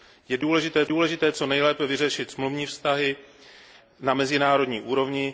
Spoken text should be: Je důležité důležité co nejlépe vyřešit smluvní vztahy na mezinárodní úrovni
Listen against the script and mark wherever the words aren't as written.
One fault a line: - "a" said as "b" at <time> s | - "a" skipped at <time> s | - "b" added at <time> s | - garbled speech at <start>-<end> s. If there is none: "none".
none